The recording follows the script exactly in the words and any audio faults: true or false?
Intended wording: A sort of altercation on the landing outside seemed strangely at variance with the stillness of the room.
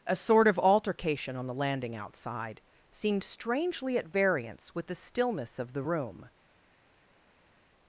true